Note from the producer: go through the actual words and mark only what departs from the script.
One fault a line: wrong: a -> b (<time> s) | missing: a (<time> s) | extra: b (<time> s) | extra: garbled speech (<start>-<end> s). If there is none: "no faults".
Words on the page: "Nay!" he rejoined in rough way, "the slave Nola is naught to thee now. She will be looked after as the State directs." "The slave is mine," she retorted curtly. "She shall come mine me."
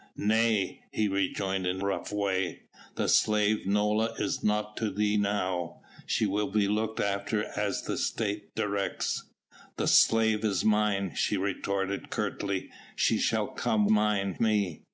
no faults